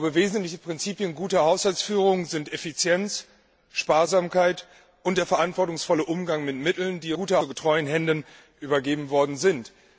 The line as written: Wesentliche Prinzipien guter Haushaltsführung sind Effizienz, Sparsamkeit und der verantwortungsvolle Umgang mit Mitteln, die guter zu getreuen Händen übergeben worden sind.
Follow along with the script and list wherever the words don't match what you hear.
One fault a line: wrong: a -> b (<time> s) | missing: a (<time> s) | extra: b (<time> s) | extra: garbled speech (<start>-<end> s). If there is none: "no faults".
no faults